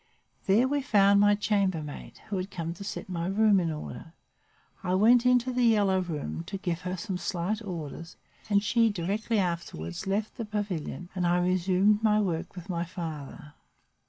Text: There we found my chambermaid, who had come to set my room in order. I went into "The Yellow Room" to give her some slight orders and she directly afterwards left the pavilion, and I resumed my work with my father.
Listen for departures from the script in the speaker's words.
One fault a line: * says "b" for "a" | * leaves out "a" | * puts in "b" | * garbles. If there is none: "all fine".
all fine